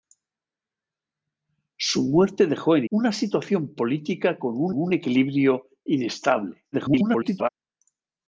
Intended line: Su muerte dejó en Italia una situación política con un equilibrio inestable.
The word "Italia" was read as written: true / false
false